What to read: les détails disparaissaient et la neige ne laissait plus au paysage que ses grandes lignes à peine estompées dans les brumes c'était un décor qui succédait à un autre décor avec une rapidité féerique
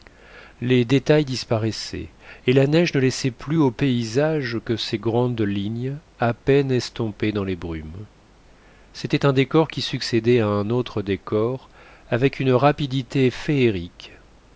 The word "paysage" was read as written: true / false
true